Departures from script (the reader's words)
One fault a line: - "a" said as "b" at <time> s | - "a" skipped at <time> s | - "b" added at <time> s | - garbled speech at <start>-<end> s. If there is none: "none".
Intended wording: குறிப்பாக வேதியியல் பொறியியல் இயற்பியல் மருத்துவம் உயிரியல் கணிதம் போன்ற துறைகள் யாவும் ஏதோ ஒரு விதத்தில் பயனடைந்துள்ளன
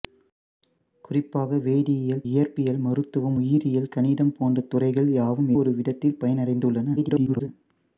- "பொறியியல்" skipped at 2.2 s
- "ஏதோ" skipped at 5.5 s
- garbled speech at 7.0-7.5 s